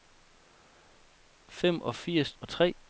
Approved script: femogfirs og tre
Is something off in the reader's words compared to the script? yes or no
no